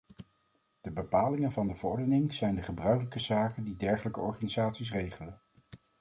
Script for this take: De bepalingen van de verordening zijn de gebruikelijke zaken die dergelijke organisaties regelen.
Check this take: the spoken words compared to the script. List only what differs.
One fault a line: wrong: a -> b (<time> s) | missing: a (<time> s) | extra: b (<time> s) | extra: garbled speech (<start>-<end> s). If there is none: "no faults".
no faults